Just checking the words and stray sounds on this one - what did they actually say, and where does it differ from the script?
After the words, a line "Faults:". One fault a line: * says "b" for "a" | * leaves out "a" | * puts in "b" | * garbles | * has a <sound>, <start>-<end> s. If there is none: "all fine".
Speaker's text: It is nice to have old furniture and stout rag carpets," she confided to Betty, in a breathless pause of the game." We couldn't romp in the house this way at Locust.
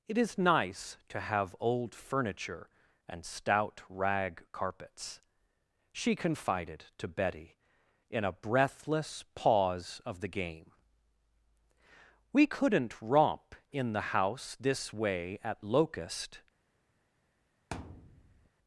It is nice to have old furniture and stout rag carpets," she confided to Betty, in a breathless pause of the game." We couldn't romp in the house this way at Locust.
Faults:
* has a thud, 17.7-18.5 s